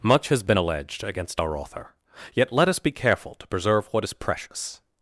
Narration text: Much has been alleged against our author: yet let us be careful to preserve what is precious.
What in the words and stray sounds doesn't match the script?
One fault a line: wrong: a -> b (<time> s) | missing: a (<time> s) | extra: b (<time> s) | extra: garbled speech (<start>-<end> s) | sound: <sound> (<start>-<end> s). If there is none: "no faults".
no faults